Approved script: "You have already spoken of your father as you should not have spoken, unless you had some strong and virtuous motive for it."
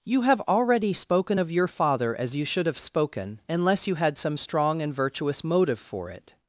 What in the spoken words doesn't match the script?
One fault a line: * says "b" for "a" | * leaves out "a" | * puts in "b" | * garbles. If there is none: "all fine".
* leaves out "not"